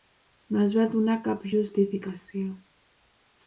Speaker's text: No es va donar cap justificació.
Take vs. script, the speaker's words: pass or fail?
pass